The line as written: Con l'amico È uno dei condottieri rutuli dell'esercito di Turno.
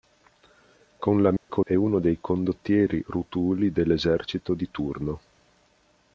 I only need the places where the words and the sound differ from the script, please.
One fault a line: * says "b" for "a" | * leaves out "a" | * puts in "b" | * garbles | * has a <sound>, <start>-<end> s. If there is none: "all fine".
* has a dropout, 1.4-1.5 s